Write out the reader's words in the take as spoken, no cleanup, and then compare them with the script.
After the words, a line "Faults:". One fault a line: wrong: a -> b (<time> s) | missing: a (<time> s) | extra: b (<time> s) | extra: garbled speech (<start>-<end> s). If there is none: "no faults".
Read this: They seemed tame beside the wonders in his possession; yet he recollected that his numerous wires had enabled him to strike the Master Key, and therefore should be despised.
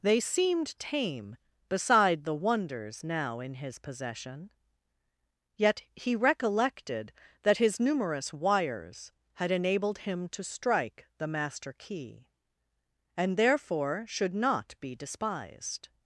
They seemed tame beside the wonders now in his possession; yet he recollected that his numerous wires had enabled him to strike the Master Key, and therefore should not be despised.
Faults:
extra: now (3.0 s)
extra: not (14.3 s)